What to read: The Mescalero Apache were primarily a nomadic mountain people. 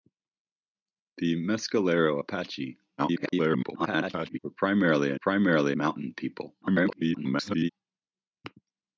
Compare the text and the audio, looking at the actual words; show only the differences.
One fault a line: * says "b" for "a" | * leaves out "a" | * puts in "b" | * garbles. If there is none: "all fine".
* garbles
* says "primarily" for "nomadic"
* garbles